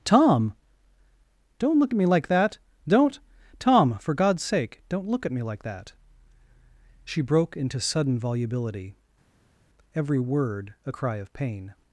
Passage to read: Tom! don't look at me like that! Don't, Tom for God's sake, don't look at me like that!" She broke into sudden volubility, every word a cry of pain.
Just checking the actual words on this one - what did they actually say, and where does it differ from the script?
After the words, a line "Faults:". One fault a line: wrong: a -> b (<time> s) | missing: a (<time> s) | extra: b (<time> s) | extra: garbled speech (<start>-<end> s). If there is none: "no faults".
Tom! don't look at me like that! Don't, Tom for God's sake, don't look at me like that!" She broke into sudden volubility, every word a cry of pain.
Faults:
no faults